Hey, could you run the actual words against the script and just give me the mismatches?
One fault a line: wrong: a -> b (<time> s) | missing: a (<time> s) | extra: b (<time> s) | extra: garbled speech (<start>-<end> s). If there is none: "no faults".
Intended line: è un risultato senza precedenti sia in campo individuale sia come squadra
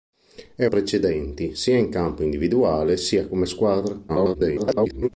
missing: un risultato senza (0.7 s)
extra: garbled speech (4.1-5.1 s)